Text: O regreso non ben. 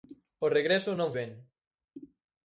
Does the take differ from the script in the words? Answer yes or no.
no